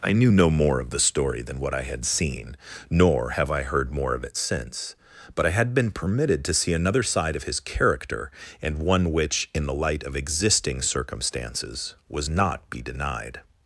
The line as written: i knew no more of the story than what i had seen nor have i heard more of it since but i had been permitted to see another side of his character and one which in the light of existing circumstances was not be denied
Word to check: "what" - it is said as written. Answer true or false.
true